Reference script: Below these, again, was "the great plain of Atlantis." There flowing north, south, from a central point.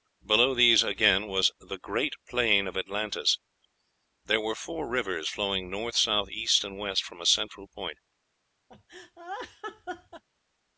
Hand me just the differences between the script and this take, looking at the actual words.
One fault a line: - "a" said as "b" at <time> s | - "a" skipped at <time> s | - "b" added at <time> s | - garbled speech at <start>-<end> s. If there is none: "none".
- "were four rivers" added at 4.4 s
- "east and west" added at 6.3 s